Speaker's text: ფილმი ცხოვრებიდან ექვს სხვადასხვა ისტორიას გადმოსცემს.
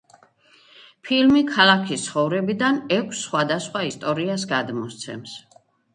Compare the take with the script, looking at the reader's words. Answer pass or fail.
fail